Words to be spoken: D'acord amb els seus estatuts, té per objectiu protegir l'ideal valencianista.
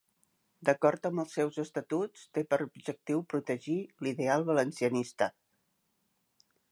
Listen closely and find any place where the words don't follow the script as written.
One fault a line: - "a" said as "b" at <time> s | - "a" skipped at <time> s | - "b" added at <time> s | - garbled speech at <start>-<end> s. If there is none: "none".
none